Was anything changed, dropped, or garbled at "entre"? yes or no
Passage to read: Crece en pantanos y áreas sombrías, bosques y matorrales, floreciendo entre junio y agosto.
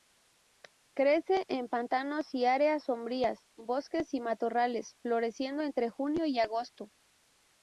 no